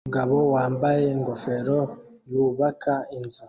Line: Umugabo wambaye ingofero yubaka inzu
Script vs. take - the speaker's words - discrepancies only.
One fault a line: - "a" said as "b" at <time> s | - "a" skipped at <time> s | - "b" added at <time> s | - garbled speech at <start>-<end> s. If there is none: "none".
none